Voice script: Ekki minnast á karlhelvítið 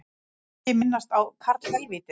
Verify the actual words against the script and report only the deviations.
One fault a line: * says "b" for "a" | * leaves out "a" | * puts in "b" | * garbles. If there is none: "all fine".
all fine